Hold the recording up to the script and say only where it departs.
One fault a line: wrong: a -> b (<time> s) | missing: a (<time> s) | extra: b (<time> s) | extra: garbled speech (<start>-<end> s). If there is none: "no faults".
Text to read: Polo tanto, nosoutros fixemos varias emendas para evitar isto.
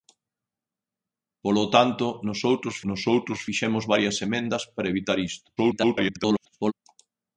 extra: nosoutros (2.9 s)
extra: garbled speech (5.6-6.7 s)